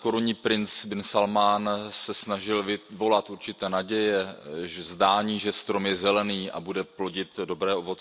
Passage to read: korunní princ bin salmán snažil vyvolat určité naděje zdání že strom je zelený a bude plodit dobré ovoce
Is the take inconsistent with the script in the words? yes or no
yes